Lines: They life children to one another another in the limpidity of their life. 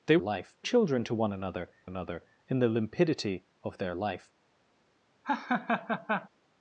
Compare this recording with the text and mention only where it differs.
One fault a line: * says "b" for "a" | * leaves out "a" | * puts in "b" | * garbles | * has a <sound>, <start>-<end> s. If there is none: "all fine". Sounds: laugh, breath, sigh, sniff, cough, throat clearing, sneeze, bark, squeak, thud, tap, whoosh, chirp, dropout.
* has a laugh, 5.2-6.3 s